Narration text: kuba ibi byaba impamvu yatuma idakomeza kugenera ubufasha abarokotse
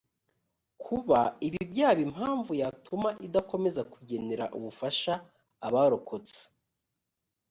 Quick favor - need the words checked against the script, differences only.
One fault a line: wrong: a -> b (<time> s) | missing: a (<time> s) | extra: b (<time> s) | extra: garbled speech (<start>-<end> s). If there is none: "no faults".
no faults